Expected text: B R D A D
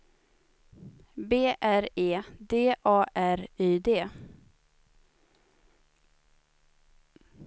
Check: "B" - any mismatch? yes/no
no